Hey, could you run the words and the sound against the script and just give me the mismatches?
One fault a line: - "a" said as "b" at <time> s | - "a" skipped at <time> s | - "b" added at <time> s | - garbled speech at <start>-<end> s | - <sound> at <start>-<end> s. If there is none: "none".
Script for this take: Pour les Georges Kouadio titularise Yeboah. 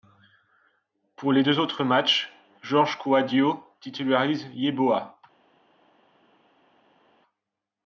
- "deux autres matchs" added at 1.4 s